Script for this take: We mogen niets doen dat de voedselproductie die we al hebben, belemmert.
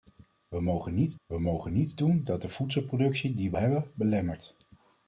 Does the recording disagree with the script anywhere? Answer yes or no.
yes